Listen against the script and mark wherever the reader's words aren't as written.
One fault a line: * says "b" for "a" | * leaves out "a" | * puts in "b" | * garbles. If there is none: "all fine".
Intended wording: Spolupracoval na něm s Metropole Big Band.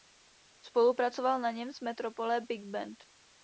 all fine